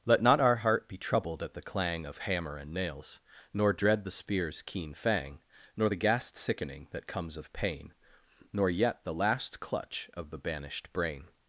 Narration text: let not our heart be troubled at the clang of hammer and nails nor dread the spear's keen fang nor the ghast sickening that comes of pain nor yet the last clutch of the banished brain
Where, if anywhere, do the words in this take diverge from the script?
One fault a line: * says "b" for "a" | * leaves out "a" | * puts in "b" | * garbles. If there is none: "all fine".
all fine